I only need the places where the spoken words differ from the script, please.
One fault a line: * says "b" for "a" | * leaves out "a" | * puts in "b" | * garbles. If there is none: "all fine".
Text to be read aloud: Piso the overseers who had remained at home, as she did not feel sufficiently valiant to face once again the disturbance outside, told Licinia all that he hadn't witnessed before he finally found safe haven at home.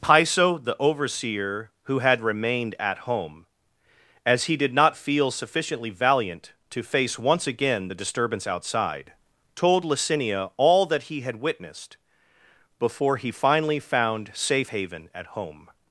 * says "overseer" for "overseers"
* says "he" for "she"
* says "had" for "hadn't"